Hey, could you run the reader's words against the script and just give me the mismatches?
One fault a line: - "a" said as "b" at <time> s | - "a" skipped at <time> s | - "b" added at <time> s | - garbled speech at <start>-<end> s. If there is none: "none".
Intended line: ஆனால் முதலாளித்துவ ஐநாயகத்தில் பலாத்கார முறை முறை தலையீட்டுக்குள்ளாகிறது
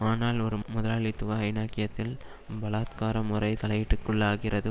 - "ஒரு" added at 0.4 s
- "முறை" skipped at 3.5 s